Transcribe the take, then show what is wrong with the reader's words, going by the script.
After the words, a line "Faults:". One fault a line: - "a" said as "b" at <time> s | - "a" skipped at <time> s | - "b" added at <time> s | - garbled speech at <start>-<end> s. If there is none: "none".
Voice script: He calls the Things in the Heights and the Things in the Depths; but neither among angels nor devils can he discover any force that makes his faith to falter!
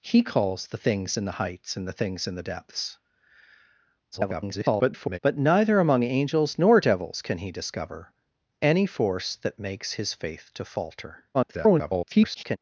He calls the Things in the Heights and the Things in the Depths; [garbled] but neither among angels nor devils can he discover any force that makes his faith to falter! [garbled]
Faults:
- garbled speech at 4.1-5.2 s
- garbled speech at 11.3-12.6 s